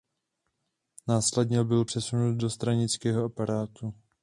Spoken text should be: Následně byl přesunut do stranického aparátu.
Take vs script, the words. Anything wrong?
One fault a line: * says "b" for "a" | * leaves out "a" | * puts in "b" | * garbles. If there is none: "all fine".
all fine